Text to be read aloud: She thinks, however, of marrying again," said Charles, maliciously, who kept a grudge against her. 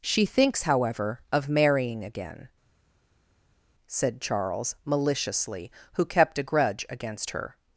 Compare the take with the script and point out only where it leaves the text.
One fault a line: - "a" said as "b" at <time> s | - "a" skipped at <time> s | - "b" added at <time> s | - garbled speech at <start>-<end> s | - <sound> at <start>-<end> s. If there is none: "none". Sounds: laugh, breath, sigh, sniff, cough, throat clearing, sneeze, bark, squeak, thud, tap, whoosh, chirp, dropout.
none